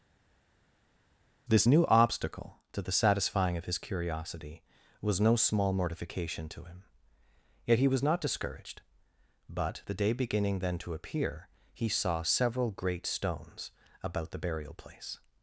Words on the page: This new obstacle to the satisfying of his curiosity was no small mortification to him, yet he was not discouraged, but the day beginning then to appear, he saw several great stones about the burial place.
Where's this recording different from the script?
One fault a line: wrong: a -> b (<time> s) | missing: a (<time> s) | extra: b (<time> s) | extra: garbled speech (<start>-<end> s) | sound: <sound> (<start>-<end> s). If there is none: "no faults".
no faults